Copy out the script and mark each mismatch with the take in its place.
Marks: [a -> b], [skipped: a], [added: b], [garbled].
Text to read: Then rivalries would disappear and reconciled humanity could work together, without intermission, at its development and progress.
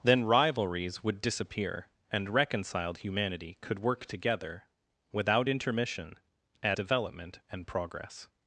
Then rivalries would disappear and reconciled humanity could work together, without intermission, at [skipped: its] development and progress.